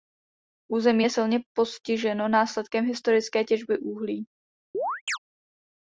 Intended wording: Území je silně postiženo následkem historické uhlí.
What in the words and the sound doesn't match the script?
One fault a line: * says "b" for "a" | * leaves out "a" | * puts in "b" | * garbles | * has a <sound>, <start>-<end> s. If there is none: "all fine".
* puts in "těžby"
* has a chirp, 4.7-5.2 s